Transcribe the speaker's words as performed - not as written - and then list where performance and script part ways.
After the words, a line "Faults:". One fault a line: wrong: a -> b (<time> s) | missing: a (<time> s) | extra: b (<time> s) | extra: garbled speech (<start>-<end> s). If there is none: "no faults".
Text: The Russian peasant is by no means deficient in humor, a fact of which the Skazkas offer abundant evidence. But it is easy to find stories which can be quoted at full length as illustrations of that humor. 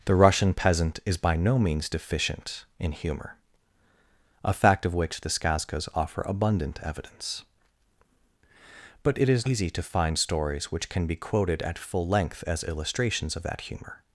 The Russian peasant is by no means deficient in humor, a fact of which the Skazkas offer abundant evidence. But it is easy to find stories which can be quoted at full length as illustrations of that humor.
Faults:
no faults